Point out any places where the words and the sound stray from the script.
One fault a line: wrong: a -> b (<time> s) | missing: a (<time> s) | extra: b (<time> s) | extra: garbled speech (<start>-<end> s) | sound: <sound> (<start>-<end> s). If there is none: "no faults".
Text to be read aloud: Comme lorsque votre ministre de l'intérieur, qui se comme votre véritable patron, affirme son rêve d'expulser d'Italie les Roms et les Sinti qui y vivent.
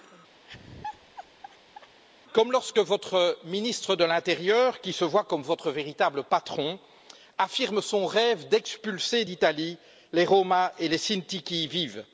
sound: laugh (0.4-2.0 s)
extra: voit (5.0 s)